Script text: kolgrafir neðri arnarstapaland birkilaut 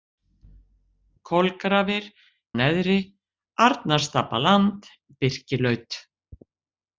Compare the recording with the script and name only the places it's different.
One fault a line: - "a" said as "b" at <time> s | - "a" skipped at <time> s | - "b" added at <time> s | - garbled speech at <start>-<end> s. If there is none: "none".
none